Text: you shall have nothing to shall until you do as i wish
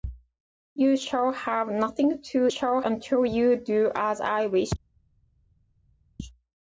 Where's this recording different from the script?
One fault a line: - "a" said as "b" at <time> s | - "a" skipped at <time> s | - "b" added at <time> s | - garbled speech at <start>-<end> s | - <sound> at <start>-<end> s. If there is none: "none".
none